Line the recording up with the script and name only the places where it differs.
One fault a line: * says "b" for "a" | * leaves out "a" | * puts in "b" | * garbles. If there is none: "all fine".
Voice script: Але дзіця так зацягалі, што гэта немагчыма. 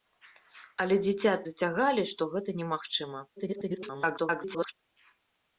* leaves out "так"
* garbles